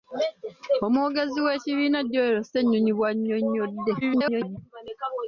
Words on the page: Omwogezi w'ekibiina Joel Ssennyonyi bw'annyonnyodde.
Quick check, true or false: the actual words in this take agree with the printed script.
false